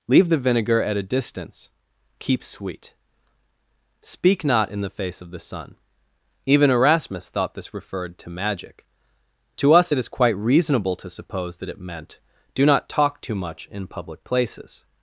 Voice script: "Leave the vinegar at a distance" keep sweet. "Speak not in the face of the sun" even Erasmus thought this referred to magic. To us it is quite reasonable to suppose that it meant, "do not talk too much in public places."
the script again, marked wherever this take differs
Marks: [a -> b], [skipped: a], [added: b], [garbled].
"Leave the vinegar at a distance" keep sweet. "Speak not in the face of the sun" even Erasmus thought this referred to magic. To us it is quite reasonable to suppose that it meant, "do not talk too much in public places."